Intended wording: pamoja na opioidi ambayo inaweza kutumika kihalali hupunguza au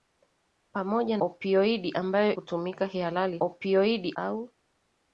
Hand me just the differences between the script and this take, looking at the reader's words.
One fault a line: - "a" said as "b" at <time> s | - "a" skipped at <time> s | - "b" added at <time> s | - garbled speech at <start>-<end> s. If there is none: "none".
- "na" skipped at 1.2 s
- "inaweza" skipped at 2.4 s
- "hupunguza" said as "opioidi" at 3.4 s